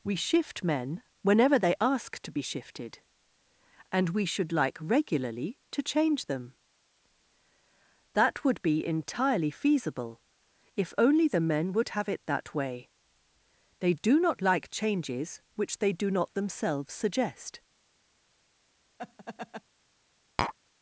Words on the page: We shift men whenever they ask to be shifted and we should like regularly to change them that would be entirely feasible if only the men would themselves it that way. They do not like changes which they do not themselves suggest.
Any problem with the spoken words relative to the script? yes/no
yes